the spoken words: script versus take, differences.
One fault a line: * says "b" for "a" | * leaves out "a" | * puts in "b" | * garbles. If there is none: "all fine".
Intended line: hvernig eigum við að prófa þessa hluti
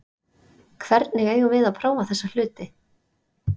all fine